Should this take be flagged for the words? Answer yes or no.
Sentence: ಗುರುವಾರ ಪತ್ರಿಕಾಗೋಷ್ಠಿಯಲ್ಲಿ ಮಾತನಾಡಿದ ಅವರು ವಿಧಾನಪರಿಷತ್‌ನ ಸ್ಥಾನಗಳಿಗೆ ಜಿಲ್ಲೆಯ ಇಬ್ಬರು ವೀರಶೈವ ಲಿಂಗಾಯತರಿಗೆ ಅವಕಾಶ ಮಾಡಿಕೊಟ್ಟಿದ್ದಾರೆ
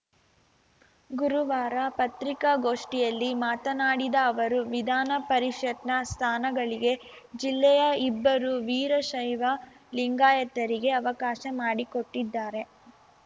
no